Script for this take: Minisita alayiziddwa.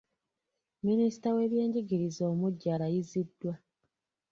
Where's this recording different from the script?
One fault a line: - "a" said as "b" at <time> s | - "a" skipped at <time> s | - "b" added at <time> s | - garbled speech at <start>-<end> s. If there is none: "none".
- "w'ebyenjigiriza omuggya" added at 1.4 s